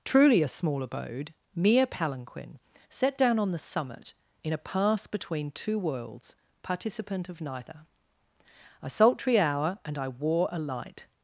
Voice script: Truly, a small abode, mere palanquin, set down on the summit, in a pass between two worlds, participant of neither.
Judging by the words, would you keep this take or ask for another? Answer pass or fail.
fail